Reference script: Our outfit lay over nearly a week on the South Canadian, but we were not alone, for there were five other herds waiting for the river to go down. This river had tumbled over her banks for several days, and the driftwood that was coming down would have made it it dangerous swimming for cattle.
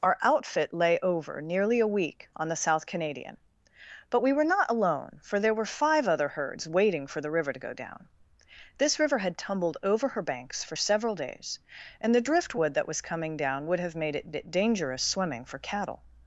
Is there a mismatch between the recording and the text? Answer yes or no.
no